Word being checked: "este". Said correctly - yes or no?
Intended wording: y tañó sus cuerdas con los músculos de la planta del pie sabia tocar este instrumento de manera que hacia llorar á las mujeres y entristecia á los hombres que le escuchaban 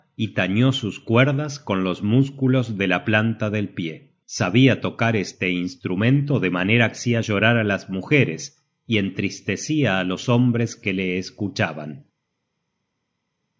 yes